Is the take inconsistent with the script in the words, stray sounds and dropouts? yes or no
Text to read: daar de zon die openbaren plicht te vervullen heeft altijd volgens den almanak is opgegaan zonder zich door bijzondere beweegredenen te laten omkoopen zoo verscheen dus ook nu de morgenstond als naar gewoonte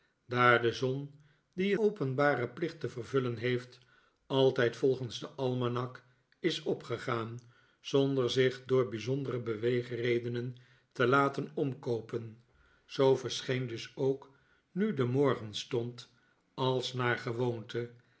no